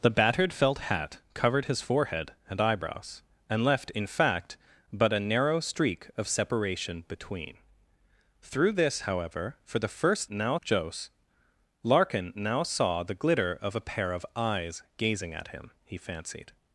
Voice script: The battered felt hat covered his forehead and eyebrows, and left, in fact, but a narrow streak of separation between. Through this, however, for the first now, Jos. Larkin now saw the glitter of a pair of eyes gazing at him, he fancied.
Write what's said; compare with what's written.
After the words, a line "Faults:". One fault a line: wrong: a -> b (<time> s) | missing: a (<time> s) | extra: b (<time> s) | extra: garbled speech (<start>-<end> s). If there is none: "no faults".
The battered felt hat covered his forehead and eyebrows, and left, in fact, but a narrow streak of separation between. Through this, however, for the first now, Jos. Larkin now saw the glitter of a pair of eyes gazing at him, he fancied.
Faults:
no faults